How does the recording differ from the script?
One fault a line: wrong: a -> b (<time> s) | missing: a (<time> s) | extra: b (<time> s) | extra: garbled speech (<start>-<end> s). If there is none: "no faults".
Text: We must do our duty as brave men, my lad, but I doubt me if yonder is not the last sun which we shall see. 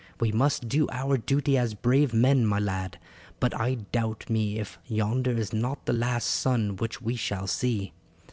no faults